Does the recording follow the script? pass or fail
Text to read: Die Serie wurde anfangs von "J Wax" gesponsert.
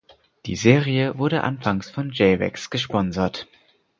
pass